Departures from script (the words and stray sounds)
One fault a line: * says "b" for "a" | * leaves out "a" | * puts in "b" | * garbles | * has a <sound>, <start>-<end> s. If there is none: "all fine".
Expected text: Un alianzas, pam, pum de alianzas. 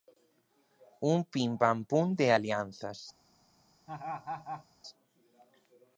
* says "pim" for "alianzas"
* has a laugh, 3.9-4.6 s